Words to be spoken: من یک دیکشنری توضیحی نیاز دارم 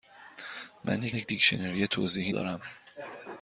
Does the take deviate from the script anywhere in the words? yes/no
yes